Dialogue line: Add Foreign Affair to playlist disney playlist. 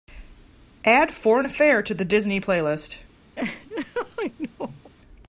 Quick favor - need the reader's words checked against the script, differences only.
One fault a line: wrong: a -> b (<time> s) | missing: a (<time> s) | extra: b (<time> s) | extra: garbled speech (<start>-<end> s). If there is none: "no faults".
wrong: playlist -> the (1.9 s)